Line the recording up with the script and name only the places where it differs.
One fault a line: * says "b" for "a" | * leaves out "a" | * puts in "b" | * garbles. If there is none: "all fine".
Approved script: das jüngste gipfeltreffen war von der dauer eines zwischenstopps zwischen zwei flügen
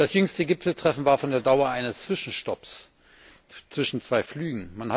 all fine